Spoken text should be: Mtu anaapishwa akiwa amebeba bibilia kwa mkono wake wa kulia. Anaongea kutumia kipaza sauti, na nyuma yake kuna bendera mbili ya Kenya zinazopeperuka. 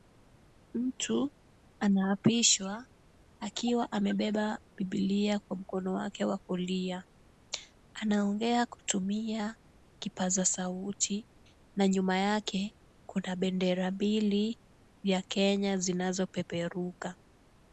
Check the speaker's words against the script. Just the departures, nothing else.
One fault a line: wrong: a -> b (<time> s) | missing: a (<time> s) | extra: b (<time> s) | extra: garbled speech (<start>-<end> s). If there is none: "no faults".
no faults